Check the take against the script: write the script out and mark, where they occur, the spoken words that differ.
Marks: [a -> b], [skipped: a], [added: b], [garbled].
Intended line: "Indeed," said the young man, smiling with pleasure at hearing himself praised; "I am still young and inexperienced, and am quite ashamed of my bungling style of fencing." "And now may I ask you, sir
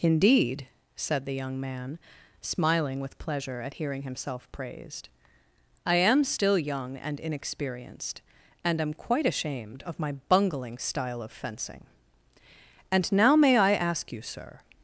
"Indeed," said the young man, smiling with pleasure at hearing himself praised; "I am still young and inexperienced, and am quite ashamed of my bungling style of fencing." "And now may I ask you, sir